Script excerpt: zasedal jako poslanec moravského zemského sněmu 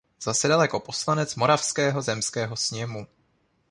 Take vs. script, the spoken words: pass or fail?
pass